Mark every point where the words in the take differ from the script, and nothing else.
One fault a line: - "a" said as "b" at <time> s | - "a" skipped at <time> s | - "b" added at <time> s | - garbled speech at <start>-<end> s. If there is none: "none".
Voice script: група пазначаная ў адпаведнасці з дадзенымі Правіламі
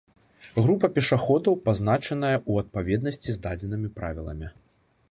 - "пешаходаў" added at 0.9 s